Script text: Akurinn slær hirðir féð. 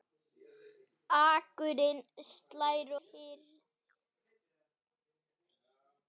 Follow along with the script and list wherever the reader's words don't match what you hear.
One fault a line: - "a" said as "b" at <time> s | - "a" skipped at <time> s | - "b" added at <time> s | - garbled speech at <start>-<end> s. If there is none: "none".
none